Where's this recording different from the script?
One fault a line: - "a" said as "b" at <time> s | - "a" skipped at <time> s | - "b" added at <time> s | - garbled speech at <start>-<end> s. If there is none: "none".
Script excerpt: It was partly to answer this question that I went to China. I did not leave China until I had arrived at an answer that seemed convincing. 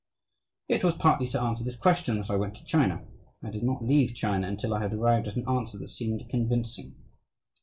none